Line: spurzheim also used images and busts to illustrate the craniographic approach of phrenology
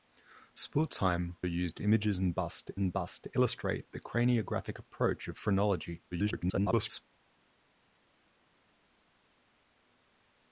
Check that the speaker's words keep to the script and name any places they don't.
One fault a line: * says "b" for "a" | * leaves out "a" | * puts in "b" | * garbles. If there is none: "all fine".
* leaves out "also"
* puts in "and busts to"
* garbles